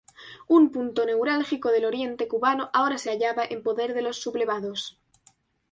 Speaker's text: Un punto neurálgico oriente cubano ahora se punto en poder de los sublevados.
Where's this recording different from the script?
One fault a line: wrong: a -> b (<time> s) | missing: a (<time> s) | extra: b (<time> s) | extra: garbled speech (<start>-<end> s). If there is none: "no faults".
extra: del (1.7 s)
wrong: punto -> hallaba (3.1 s)